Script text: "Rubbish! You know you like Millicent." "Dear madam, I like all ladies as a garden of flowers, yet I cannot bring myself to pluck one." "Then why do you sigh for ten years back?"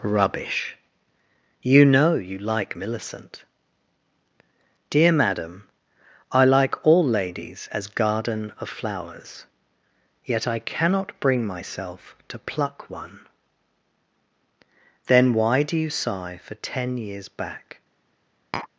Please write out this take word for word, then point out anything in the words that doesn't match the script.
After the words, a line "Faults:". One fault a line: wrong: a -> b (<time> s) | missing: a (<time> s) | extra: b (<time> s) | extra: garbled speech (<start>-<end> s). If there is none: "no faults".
"Rubbish! You know you like Millicent." "Dear madam, I like all ladies as garden of flowers, yet I cannot bring myself to pluck one." "Then why do you sigh for ten years back?"
Faults:
missing: a (7.9 s)